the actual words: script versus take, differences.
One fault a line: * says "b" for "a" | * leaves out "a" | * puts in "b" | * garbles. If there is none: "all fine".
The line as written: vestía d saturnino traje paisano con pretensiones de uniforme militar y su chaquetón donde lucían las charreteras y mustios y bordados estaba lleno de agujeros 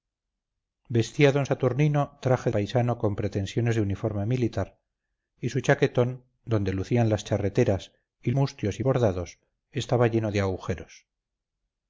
all fine